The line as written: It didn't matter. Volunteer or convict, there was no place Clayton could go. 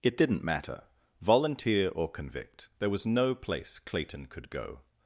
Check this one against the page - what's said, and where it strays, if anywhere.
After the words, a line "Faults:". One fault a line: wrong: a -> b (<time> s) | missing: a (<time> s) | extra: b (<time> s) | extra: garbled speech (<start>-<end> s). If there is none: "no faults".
It didn't matter. Volunteer or convict, there was no place Clayton could go.
Faults:
no faults